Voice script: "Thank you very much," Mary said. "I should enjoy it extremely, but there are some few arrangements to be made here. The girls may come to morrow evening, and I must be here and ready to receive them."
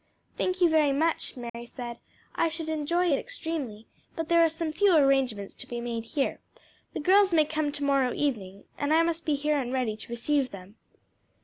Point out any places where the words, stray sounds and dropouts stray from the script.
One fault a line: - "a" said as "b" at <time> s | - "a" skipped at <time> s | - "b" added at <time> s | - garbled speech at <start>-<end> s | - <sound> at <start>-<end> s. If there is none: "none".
- dropout at 1.5-1.5 s